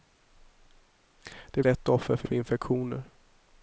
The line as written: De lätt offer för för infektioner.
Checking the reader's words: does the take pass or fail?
pass